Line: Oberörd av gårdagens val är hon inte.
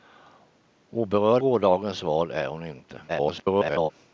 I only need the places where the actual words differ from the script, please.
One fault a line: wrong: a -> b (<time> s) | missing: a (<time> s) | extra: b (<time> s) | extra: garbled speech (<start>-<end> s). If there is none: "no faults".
missing: av (1.4 s)
extra: garbled speech (3.1-3.9 s)